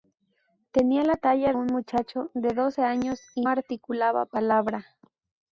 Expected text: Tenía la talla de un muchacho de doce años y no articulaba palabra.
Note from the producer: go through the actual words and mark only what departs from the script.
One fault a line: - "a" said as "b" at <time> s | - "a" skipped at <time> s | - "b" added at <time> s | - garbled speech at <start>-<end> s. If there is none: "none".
- "de" skipped at 1.5 s
- "no" skipped at 3.4 s